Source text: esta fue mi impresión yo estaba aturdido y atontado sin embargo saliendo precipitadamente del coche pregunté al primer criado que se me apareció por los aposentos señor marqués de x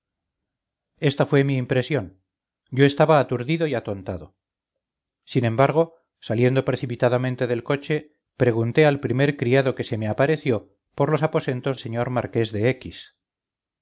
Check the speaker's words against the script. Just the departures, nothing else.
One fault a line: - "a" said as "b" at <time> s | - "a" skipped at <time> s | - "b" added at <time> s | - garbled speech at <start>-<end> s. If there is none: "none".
none